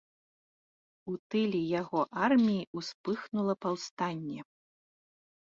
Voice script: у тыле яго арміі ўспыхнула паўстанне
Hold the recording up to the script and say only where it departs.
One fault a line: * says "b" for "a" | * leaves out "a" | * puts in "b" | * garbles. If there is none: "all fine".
all fine